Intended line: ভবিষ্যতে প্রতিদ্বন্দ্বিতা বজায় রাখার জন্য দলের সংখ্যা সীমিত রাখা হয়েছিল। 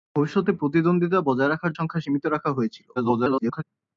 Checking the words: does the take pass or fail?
fail